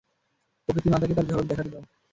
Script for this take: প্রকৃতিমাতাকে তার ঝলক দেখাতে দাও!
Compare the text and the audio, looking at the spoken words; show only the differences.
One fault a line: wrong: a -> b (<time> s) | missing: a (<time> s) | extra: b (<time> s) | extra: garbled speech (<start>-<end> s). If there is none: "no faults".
no faults